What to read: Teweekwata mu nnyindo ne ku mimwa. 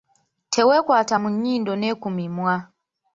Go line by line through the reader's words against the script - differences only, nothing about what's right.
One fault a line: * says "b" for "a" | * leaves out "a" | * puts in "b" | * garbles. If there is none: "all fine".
all fine